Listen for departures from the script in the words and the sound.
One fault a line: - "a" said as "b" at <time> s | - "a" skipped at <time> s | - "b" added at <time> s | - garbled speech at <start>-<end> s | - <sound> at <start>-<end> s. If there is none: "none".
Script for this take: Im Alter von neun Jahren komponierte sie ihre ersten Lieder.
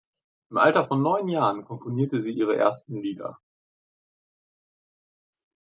none